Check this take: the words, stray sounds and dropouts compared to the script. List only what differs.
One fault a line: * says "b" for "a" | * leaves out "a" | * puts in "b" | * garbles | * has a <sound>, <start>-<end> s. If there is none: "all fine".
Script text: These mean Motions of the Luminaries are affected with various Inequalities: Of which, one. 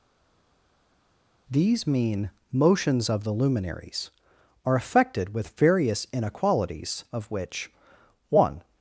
all fine